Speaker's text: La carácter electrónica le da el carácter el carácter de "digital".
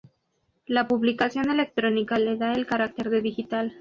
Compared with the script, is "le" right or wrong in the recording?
right